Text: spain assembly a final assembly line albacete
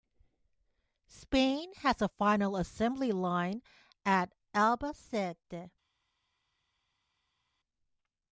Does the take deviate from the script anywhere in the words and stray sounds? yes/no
yes